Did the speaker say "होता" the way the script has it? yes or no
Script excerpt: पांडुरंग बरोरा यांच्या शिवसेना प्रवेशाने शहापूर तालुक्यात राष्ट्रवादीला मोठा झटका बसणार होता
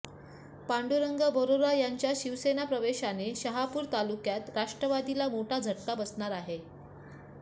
no